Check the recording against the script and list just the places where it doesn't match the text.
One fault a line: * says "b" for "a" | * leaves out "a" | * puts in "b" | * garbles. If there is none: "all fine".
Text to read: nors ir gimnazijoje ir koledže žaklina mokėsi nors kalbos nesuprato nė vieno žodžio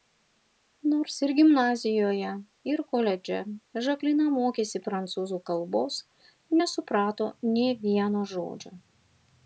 * says "prancūzų" for "nors"